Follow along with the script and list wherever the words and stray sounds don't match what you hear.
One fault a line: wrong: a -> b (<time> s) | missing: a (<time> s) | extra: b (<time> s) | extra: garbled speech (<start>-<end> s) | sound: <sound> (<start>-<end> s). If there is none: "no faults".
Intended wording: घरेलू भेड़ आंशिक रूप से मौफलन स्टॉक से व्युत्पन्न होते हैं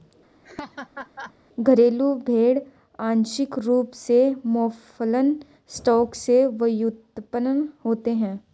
sound: laugh (0.4-1.3 s)